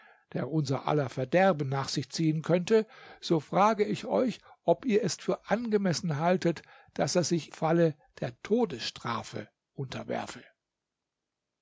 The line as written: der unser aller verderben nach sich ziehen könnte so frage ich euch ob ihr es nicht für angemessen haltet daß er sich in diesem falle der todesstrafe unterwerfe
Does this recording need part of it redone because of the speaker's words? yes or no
yes